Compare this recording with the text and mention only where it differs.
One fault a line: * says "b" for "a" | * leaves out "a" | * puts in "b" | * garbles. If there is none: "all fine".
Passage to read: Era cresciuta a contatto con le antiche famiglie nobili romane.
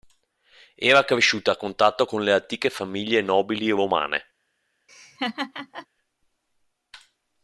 all fine